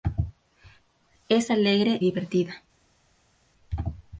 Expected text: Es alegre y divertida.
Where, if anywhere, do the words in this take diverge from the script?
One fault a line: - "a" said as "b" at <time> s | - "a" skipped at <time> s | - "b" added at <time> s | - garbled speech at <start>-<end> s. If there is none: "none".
- "y" skipped at 2.0 s